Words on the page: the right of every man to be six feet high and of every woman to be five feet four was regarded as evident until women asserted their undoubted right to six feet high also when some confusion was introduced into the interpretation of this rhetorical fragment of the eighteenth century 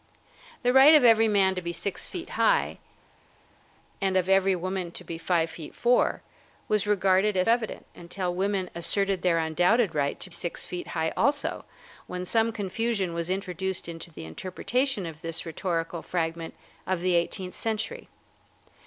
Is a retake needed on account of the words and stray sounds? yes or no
no